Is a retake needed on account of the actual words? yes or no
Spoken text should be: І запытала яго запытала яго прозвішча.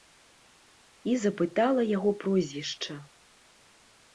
yes